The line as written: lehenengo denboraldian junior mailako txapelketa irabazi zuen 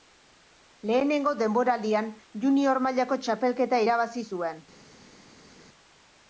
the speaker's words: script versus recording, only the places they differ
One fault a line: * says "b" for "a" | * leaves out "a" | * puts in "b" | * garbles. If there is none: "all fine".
all fine